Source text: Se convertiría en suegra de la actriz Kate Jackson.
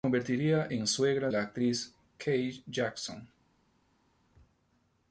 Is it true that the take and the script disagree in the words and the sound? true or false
true